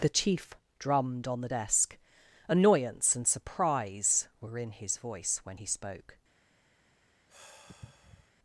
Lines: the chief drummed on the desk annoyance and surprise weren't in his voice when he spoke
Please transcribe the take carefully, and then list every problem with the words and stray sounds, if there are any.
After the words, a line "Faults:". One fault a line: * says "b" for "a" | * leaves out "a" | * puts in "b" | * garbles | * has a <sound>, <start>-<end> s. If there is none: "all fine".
the chief drummed on the desk annoyance and surprise were in his voice when he spoke
Faults:
* says "were" for "weren't"
* has a sigh, 7.3-8.3 s